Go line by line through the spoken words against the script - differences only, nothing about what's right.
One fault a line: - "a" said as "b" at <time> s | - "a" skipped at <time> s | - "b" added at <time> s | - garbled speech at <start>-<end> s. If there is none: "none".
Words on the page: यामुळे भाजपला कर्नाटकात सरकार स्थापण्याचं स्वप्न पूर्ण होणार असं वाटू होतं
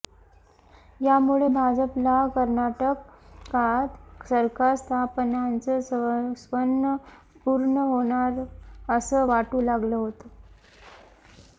- "लागलं" added at 9.6 s